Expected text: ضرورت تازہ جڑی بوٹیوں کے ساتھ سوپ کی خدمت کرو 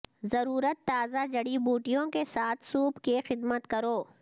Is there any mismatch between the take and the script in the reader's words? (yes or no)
no